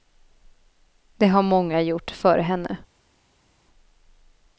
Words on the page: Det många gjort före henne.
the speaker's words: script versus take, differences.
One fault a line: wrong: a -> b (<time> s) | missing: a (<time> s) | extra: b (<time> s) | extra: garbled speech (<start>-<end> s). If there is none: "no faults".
extra: har (1.3 s)